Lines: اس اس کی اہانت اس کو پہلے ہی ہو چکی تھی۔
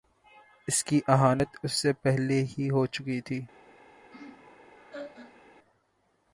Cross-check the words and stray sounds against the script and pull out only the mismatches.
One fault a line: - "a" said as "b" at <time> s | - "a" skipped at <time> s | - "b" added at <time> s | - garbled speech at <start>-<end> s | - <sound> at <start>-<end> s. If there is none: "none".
- "اس" skipped at 0.8 s
- "کو" said as "سے" at 1.7 s
- laugh at 4.1-5.4 s